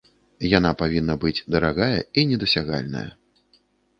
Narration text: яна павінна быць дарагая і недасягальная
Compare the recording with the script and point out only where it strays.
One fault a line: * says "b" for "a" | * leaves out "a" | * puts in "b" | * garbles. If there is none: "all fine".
all fine